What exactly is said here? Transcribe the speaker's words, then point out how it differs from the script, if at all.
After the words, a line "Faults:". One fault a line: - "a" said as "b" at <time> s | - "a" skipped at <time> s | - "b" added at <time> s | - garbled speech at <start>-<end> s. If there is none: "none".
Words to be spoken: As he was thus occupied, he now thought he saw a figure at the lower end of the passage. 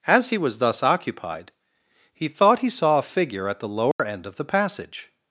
As he was thus occupied, he thought he saw a figure at the lower end of the passage.
Faults:
- "now" skipped at 2.3 s